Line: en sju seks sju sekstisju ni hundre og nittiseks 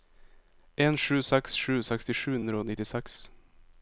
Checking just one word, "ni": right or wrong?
wrong